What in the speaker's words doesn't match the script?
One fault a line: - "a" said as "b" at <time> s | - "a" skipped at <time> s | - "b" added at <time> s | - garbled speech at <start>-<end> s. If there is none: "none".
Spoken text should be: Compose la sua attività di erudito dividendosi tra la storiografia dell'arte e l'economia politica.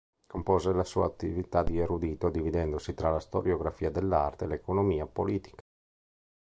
none